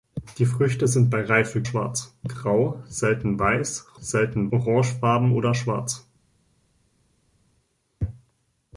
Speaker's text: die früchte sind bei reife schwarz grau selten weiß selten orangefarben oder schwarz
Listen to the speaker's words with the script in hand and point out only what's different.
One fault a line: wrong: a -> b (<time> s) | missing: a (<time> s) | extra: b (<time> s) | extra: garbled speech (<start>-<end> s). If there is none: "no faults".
no faults